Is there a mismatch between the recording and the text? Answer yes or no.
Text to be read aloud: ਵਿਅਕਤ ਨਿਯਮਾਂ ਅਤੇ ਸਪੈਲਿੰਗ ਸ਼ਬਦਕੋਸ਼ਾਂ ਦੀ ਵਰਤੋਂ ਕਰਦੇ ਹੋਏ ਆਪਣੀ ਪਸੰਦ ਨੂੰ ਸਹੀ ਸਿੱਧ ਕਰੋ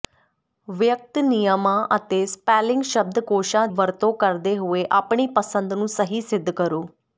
yes